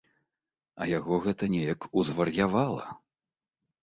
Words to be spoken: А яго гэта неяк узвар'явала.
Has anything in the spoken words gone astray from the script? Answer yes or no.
no